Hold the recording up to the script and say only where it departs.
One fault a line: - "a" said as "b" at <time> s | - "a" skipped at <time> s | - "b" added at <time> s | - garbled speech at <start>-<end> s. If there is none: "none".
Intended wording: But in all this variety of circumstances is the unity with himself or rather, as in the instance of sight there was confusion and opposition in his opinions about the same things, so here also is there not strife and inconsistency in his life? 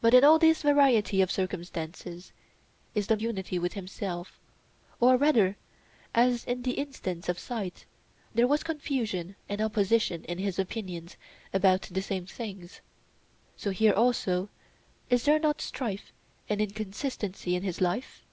none